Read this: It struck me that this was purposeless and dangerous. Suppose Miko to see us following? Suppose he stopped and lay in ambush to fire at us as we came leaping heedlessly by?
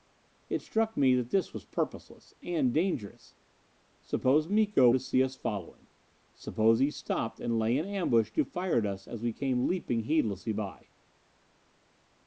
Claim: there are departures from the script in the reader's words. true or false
false